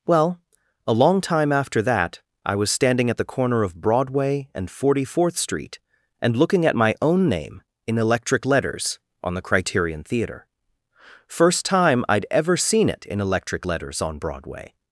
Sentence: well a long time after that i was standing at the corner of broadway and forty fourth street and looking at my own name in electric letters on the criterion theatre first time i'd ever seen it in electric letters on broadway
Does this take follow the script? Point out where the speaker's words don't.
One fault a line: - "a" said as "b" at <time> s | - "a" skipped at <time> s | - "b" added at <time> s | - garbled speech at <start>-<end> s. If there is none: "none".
none